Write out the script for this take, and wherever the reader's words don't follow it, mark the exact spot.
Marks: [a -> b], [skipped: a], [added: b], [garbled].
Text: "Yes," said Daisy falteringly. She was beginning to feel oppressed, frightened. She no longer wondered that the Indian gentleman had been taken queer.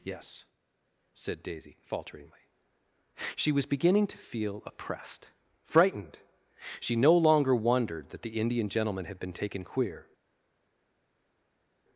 "Yes," said Daisy falteringly. She was beginning to feel oppressed, frightened. She no longer wondered that the Indian gentleman had been taken queer.